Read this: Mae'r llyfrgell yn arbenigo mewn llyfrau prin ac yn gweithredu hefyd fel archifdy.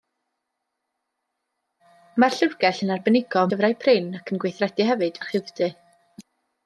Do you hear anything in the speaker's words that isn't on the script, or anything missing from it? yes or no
yes